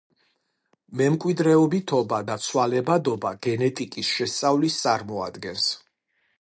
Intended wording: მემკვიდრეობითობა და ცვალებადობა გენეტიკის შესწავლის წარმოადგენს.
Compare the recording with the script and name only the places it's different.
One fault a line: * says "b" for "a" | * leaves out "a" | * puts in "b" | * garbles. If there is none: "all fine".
all fine